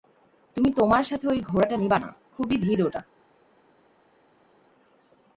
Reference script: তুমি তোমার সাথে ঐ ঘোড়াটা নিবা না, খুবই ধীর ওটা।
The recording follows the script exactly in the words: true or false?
true